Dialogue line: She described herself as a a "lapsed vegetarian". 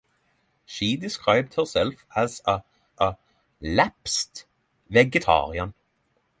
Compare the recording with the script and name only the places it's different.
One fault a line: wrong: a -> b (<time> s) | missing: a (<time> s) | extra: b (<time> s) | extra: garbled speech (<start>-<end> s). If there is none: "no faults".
no faults